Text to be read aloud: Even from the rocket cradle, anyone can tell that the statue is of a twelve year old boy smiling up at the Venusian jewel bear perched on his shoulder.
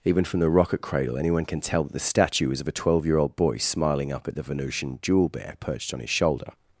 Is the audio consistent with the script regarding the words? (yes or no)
yes